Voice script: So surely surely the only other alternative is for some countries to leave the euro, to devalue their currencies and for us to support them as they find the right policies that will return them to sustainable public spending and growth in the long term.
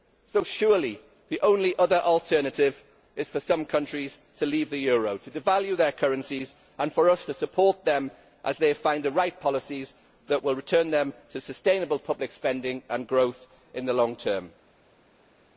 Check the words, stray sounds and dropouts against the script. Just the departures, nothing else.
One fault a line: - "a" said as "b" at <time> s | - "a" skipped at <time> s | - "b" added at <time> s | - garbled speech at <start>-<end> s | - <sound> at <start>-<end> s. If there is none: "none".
- "surely" skipped at 1.0 s